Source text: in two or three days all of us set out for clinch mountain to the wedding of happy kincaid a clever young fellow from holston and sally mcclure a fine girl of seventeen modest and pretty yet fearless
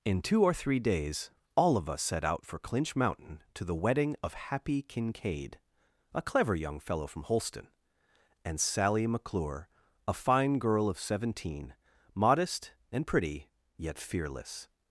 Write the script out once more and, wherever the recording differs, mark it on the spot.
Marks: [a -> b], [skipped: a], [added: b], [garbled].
in two or three days all of us set out for clinch mountain to the wedding of happy kincaid a clever young fellow from holston and sally mcclure a fine girl of seventeen modest and pretty yet fearless